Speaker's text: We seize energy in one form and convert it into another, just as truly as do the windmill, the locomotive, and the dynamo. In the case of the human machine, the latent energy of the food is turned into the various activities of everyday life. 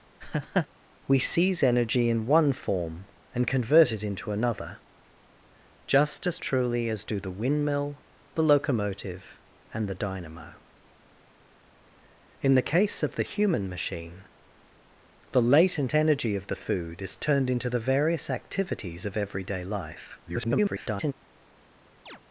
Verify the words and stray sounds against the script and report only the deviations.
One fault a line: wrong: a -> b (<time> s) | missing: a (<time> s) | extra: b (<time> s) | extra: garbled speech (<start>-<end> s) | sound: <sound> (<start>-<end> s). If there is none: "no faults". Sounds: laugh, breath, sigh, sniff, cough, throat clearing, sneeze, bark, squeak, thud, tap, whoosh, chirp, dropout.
sound: laugh (0.2-0.7 s)
extra: garbled speech (20.3-21.1 s)
sound: chirp (22.1-22.2 s)